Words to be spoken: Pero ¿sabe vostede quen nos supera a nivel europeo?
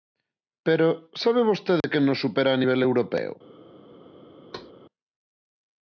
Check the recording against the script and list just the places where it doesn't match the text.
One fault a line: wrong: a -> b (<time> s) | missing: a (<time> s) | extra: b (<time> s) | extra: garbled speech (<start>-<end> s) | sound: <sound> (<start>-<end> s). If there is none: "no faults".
sound: dropout (1.8-1.8 s)
sound: thud (4.5-4.7 s)